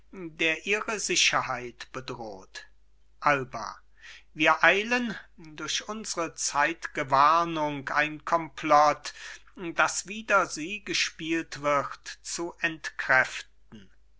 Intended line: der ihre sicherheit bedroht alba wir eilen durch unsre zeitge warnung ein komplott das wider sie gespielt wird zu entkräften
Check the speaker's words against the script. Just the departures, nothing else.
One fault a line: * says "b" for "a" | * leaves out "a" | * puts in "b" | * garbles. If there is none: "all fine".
all fine